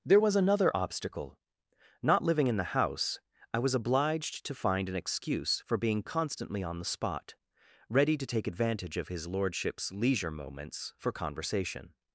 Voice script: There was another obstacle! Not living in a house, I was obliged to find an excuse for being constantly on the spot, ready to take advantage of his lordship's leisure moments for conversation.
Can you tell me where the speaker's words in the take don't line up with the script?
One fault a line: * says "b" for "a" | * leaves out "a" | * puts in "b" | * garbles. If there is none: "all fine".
* says "the" for "a"